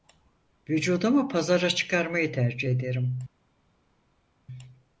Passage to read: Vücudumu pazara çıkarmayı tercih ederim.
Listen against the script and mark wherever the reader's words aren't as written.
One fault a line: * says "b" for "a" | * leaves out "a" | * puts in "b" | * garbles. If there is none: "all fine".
all fine